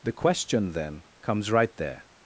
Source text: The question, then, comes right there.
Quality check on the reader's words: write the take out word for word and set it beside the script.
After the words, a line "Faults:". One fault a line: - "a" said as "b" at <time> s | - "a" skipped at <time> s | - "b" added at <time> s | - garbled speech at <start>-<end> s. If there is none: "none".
The question, then, comes right there.
Faults:
none